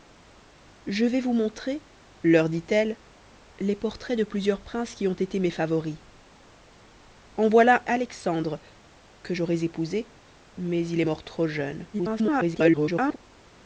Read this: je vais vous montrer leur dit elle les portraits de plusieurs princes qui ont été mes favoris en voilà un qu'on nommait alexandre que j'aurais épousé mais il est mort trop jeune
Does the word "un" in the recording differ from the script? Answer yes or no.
yes